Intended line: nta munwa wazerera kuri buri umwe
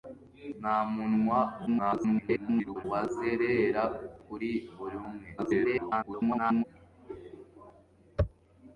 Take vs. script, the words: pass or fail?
fail